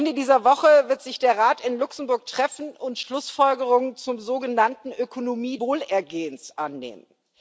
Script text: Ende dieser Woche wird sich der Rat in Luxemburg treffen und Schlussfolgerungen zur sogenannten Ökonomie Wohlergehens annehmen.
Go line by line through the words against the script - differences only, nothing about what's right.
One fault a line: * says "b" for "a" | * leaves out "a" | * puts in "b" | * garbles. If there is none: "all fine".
all fine